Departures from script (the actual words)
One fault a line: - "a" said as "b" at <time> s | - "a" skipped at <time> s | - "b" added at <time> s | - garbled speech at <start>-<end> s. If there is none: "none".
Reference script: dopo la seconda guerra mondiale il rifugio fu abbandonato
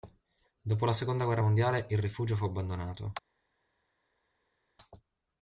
none